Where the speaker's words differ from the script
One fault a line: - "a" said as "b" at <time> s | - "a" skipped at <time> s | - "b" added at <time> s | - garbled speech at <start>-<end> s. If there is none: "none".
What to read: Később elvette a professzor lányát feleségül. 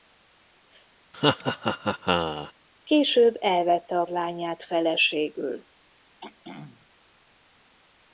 - "professzor" skipped at 4.1 s